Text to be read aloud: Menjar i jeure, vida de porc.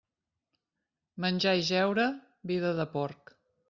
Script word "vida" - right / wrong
right